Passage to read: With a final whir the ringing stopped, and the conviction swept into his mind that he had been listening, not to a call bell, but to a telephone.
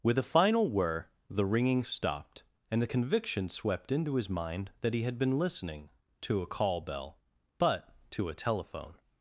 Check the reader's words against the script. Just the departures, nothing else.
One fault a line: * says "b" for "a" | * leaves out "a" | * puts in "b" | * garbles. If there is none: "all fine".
* leaves out "not"